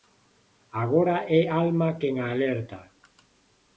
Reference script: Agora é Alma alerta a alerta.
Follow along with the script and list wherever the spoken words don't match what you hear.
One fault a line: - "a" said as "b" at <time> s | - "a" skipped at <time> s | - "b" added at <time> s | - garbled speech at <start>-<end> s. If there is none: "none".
- "alerta" said as "quen" at 2.0 s